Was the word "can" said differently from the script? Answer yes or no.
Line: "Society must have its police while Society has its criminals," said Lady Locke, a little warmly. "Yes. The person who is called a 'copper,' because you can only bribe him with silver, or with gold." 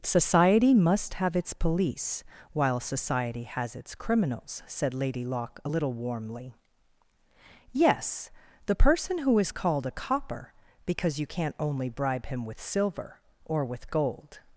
yes